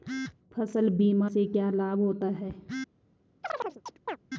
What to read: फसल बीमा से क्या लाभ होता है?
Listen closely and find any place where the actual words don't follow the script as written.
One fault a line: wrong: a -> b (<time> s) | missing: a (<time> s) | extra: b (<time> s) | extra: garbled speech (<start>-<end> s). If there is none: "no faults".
no faults